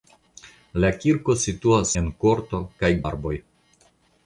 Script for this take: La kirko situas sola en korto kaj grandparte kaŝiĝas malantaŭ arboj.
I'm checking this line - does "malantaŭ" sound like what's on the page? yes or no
no